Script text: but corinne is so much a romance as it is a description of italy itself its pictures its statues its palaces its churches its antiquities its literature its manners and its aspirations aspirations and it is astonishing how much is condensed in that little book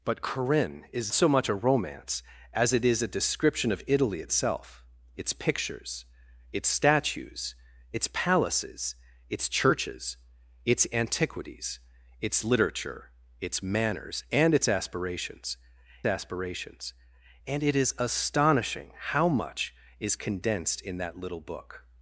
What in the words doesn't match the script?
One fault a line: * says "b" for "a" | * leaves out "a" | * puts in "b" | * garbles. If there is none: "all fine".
all fine